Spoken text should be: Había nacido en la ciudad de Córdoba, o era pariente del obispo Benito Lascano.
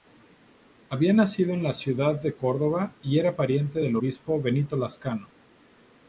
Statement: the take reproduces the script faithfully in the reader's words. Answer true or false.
false